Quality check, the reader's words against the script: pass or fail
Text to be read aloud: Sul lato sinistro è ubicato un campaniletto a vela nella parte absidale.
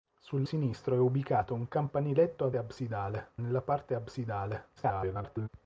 fail